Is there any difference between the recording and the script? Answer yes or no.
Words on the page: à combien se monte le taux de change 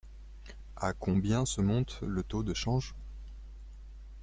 no